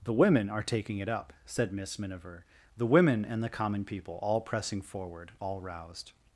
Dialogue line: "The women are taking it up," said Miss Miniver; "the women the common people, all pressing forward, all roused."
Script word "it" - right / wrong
right